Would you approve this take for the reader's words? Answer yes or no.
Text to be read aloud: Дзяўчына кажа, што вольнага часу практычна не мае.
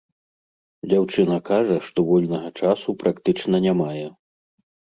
yes